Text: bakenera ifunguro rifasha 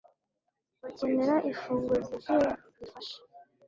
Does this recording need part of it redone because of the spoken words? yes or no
yes